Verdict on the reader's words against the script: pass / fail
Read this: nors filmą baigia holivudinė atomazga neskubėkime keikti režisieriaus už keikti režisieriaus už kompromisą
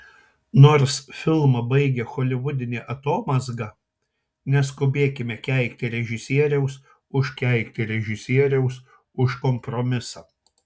pass